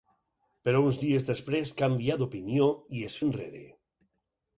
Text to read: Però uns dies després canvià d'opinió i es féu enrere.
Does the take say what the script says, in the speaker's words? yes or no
no